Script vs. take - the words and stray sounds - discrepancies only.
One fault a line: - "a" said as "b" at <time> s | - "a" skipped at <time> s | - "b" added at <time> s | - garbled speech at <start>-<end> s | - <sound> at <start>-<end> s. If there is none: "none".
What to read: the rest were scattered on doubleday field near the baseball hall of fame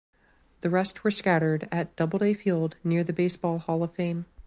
- "on" said as "at" at 1.7 s